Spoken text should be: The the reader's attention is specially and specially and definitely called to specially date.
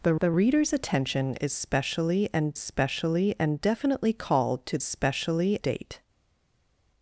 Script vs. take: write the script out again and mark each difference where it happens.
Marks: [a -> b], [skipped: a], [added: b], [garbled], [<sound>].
The the reader's attention is specially and specially and definitely called to specially date.